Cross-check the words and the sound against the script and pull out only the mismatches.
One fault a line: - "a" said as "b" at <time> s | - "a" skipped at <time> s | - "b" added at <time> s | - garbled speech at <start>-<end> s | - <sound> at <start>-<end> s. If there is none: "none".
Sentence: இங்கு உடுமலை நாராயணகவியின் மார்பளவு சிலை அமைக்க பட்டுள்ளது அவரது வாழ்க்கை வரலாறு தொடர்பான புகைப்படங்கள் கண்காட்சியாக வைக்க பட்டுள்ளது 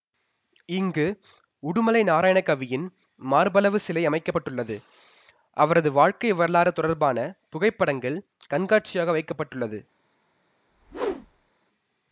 - whoosh at 10.7-11.5 s